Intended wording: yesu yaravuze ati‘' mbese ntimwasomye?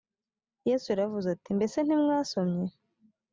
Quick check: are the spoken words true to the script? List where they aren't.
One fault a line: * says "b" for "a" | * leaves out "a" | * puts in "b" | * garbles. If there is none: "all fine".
all fine